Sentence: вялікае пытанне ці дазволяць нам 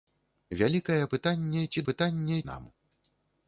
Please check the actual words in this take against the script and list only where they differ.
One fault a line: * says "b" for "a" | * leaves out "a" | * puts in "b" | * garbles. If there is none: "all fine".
* says "пытанне" for "дазволяць"